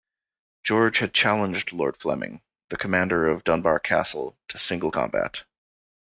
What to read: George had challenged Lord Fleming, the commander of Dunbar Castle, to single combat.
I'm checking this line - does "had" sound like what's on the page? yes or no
yes